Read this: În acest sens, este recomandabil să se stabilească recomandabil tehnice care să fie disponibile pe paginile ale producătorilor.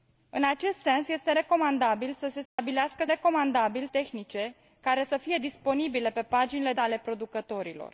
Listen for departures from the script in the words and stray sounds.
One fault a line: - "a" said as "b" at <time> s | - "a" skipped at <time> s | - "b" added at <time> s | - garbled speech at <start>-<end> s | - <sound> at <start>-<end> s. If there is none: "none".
- dropout at 2.5-2.6 s